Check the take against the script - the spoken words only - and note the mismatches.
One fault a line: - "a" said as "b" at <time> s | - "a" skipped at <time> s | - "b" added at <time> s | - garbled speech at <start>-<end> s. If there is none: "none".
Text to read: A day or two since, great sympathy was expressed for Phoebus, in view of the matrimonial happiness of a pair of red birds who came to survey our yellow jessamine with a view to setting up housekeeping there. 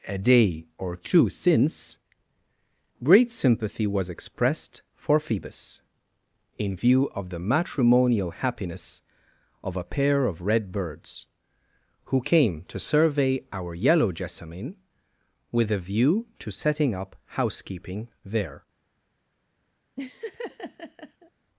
none